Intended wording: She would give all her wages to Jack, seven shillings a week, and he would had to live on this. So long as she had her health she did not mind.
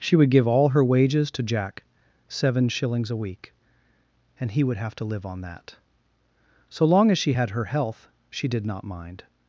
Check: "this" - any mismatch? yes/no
yes